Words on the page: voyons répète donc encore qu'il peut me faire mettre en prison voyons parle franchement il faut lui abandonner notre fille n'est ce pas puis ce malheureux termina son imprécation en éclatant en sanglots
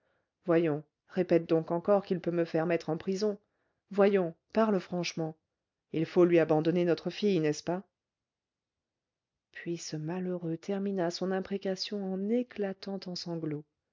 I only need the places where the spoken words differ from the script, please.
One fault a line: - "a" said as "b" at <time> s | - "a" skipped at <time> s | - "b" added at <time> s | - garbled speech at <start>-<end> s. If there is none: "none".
none